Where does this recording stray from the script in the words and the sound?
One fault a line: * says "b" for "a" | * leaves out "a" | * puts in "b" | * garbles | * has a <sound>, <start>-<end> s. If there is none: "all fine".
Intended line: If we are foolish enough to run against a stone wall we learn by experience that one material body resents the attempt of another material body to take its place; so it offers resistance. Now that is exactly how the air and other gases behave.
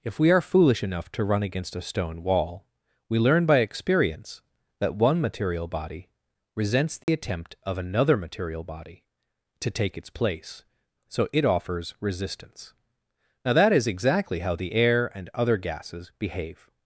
* has a dropout, 7.0-7.1 s